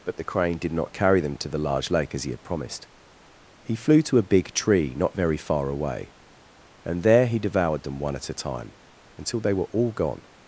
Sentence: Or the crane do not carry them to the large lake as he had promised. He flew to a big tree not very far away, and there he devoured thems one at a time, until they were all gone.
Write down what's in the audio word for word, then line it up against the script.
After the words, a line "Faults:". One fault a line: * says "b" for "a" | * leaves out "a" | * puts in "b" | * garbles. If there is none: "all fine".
But the crane did not carry them to the large lake as he had promised. He flew to a big tree not very far away, and there he devoured them one at a time, until they were all gone.
Faults:
* says "But" for "Or"
* says "did" for "do"
* says "them" for "thems"